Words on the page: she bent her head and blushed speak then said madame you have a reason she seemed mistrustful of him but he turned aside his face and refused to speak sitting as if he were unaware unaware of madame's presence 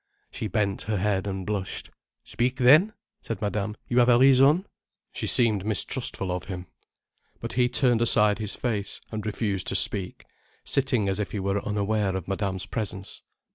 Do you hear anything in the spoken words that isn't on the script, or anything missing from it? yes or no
yes